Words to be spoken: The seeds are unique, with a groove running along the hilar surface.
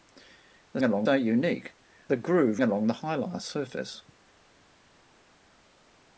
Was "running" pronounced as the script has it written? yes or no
no